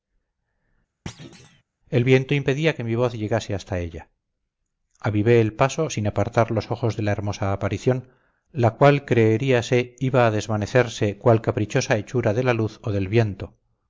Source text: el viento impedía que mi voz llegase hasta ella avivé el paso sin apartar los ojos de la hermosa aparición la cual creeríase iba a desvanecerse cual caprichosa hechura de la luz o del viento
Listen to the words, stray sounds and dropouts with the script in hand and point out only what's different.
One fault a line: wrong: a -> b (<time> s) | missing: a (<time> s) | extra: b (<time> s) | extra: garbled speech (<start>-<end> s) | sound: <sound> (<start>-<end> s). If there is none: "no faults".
sound: thud (1.1-1.6 s)